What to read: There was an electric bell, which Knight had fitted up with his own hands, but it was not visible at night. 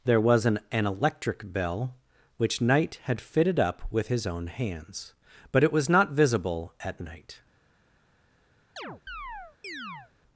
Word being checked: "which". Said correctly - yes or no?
yes